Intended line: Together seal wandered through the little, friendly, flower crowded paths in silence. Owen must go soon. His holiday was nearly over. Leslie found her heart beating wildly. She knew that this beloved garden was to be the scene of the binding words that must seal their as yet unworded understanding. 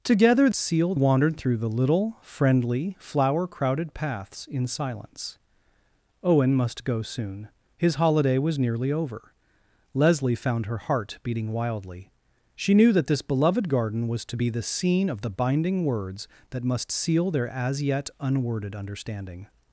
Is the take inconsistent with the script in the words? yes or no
no